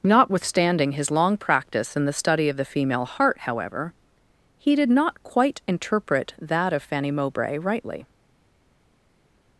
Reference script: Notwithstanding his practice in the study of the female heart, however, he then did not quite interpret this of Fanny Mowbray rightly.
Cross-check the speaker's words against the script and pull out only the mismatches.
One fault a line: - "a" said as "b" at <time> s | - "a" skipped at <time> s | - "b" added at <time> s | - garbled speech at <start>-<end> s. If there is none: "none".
- "long" added at 1.1 s
- "then" skipped at 4.8 s
- "this" said as "that" at 6.4 s